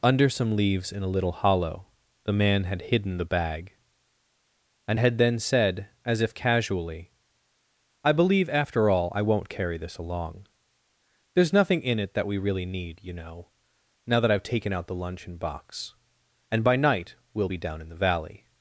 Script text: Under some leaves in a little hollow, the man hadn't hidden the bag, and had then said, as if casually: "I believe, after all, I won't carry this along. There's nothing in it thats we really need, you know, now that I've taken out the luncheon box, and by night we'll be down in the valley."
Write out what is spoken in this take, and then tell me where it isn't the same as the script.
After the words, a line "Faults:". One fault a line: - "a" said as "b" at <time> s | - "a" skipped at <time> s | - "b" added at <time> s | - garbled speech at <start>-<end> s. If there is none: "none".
Under some leaves in a little hollow, the man had hidden the bag, and had then said, as if casually: "I believe, after all, I won't carry this along. There's nothing in it that we really need, you know, now that I've taken out the luncheon box, and by night we'll be down in the valley."
Faults:
- "hadn't" said as "had" at 2.6 s
- "thats" said as "that" at 12.1 s